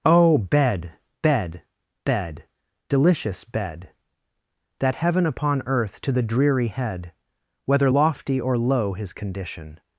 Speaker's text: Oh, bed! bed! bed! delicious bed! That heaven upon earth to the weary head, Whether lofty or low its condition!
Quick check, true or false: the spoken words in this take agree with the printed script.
false